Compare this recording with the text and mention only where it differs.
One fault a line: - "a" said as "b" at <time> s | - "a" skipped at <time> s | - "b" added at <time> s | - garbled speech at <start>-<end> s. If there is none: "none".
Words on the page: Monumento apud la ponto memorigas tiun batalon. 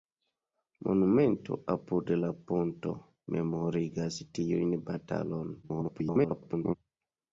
- garbled speech at 5.6-6.7 s